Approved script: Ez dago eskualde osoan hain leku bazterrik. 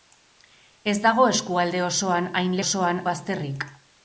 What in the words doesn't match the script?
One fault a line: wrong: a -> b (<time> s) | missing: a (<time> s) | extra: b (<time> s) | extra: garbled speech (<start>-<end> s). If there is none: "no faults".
wrong: leku -> osoan (2.6 s)